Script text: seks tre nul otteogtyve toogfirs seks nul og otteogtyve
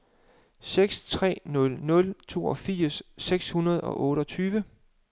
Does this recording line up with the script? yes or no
no